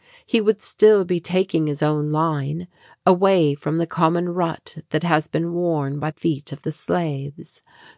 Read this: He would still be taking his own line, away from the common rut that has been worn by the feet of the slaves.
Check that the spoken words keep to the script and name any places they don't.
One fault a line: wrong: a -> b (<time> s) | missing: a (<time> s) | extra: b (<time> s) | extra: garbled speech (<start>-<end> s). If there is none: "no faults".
missing: the (6.1 s)